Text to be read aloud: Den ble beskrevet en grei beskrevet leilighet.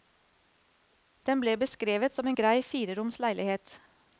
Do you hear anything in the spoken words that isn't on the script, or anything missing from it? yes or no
yes